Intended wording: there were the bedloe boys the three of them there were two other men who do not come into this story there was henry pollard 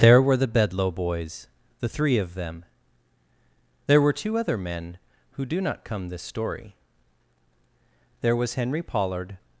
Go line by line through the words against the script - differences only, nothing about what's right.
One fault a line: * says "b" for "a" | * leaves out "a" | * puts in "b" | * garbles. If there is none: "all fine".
* leaves out "into"